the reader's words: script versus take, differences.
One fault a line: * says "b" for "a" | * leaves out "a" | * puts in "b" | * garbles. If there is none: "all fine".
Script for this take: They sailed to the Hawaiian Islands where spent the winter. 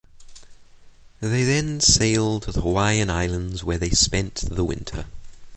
* puts in "then"
* puts in "they"